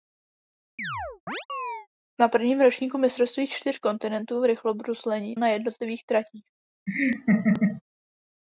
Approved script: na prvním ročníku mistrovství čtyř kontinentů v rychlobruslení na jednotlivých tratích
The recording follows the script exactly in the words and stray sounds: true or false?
false